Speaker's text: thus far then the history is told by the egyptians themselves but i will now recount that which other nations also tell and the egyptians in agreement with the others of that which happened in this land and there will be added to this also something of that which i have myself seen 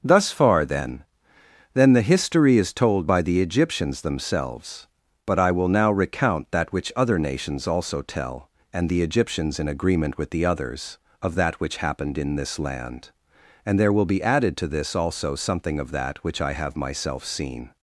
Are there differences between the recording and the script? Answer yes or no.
yes